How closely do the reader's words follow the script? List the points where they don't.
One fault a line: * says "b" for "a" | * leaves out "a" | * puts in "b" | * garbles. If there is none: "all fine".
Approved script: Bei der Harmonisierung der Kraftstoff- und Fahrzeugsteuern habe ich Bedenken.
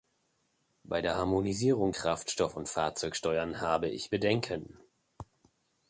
* leaves out "der"